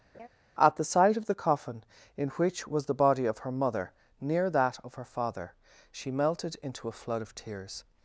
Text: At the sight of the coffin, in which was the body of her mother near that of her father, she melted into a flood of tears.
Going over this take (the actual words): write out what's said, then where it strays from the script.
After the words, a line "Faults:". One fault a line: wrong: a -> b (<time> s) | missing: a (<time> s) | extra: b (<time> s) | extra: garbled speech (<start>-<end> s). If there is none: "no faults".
At the sight of the coffin, in which was the body of her mother near that of her father, she melted into a flood of tears.
Faults:
no faults